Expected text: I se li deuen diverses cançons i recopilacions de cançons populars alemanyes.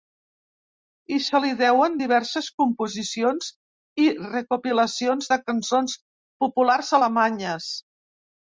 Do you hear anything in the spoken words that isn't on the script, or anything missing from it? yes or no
yes